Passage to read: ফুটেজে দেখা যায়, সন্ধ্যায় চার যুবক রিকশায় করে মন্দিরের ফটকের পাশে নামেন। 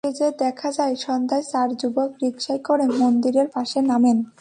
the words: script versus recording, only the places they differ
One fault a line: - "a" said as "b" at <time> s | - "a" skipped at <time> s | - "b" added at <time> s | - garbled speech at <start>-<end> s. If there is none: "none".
- "ফটকের" skipped at 3.5 s